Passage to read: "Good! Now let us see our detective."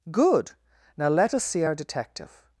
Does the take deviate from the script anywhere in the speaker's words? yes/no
no